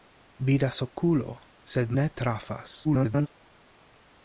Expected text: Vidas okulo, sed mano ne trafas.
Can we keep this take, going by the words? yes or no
no